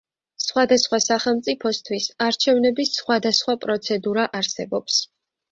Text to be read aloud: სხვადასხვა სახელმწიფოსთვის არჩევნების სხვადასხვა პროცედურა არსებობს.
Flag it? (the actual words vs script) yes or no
no